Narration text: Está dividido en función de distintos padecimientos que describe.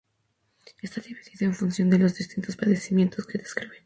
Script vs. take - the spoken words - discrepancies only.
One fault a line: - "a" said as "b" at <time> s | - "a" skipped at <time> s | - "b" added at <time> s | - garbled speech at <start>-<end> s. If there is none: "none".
- "los" added at 2.0 s